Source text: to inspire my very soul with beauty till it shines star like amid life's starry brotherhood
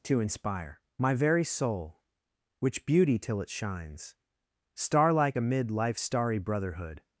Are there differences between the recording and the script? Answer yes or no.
yes